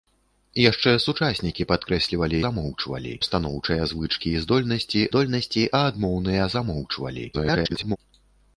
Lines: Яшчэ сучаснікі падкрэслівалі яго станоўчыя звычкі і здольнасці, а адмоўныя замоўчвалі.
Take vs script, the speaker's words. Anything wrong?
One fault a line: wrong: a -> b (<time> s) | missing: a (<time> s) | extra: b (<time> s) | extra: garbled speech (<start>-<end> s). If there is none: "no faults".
wrong: яго -> замоўчвалі (2.5 s)
extra: здольнасці (5.1 s)
extra: garbled speech (7.3-8.0 s)